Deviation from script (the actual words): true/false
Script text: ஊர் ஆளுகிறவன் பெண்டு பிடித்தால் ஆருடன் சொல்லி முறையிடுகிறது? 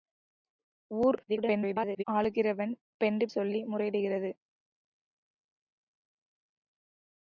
true